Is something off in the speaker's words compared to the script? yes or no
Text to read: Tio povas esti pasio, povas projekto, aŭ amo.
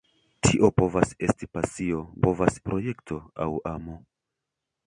no